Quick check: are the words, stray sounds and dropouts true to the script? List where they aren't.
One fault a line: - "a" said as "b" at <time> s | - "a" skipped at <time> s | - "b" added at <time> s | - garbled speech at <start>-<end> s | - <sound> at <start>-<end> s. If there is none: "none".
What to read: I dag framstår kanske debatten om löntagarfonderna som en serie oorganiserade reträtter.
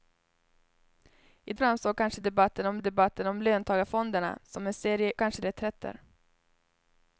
- "dag" skipped at 1.5 s
- "debatten om" added at 2.8 s
- "oorganiserade" said as "kanske" at 5.1 s